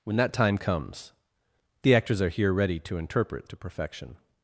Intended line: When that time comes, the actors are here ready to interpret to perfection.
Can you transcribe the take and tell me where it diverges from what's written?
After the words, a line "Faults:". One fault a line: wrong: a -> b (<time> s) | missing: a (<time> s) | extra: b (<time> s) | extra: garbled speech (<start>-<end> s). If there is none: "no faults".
When that time comes, the actors are here ready to interpret to perfection.
Faults:
no faults